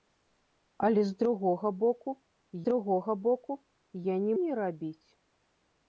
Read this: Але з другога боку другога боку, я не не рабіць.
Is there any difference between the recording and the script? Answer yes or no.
no